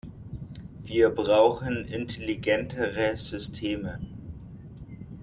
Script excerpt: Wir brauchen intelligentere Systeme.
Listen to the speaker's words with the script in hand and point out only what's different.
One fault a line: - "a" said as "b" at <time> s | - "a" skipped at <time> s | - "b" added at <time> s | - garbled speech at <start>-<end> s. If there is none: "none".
none